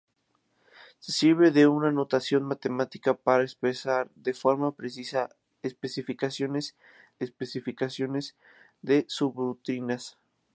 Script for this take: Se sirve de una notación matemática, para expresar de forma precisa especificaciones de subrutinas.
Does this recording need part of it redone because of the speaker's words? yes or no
yes